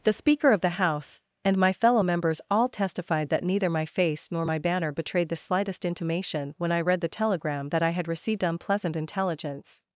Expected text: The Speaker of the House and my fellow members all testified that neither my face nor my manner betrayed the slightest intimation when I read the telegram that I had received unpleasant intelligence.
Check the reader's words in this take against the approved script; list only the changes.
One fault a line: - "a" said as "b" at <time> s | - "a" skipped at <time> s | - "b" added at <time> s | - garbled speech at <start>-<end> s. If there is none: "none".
- "manner" said as "banner" at 4.6 s